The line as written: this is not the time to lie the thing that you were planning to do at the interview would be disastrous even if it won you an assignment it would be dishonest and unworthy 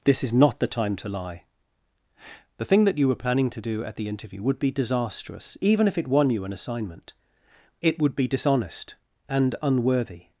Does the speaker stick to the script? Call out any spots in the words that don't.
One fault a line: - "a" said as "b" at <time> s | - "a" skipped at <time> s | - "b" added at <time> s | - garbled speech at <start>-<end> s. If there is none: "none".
none